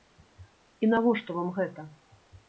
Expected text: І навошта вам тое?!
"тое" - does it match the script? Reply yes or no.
no